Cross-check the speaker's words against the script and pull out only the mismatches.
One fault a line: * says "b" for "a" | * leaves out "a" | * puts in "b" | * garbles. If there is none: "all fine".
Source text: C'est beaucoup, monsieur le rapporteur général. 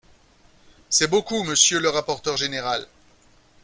all fine